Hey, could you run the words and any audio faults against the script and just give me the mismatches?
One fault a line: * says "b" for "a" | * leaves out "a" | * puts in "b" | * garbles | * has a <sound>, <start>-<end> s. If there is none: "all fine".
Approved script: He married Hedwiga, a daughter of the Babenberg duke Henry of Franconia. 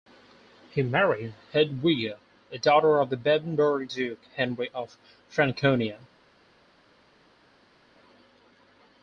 all fine